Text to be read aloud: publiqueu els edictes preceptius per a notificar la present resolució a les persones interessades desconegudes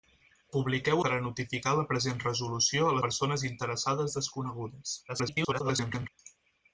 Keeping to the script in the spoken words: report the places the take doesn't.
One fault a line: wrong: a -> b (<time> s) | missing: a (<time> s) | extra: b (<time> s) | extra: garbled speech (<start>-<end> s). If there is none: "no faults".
missing: els edictes preceptius (1.0 s)
missing: les (3.0 s)
extra: garbled speech (5.1-6.1 s)